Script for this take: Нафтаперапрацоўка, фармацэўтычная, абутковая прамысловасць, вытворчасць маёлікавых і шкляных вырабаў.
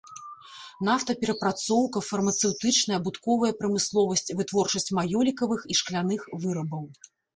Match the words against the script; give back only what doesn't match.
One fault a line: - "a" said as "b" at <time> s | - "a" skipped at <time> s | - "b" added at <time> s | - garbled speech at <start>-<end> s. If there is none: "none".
none